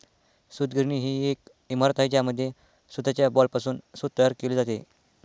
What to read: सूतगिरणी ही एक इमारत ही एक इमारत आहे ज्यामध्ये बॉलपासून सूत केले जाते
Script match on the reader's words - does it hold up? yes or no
no